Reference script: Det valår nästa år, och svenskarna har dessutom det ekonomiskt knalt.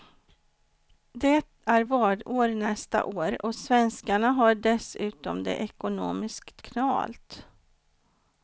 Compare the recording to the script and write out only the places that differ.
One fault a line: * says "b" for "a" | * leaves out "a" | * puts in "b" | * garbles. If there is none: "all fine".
* puts in "är"